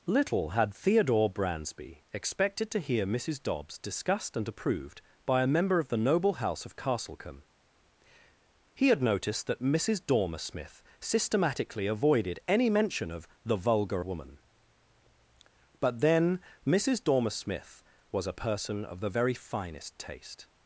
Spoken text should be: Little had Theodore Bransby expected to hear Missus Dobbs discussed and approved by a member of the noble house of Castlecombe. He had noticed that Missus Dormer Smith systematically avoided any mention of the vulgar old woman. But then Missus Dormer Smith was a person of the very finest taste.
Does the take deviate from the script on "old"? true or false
true